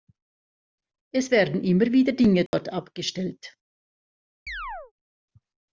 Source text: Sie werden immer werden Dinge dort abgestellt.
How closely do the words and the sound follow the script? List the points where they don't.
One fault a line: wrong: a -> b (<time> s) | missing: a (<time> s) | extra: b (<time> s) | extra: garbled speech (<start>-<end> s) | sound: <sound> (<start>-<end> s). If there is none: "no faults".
wrong: Sie -> Es (1.1 s)
wrong: werden -> wieder (1.9 s)
sound: dropout (2.5-2.5 s)
sound: chirp (4.5-4.9 s)